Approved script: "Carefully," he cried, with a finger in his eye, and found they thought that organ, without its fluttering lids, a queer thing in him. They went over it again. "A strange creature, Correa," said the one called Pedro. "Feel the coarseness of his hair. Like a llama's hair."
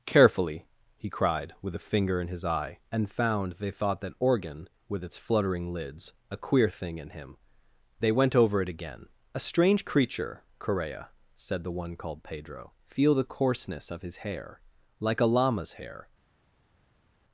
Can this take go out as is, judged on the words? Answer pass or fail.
fail